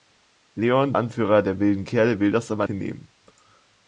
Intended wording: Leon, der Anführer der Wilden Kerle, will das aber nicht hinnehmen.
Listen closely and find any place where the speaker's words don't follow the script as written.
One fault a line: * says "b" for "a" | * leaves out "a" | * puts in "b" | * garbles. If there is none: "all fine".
* leaves out "der"
* leaves out "nicht"